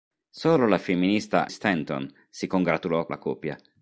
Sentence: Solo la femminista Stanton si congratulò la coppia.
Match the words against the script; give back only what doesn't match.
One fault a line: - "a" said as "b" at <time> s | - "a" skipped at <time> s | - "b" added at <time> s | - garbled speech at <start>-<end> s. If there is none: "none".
none